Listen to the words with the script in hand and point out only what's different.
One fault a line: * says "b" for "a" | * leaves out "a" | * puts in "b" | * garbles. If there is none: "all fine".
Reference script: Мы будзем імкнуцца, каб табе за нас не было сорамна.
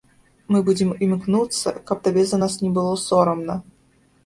all fine